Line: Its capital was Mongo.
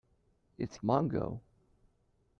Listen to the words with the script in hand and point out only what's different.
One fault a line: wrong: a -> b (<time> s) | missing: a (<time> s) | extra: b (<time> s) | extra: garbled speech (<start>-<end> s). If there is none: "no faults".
missing: capital was (0.8 s)